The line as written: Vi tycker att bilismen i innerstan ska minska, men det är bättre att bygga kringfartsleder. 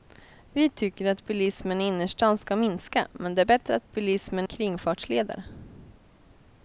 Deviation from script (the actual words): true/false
true